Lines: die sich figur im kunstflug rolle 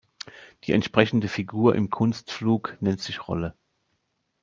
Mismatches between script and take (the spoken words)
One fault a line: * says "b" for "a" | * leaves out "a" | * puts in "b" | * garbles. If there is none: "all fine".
* says "entsprechende" for "sich"
* puts in "nennt sich"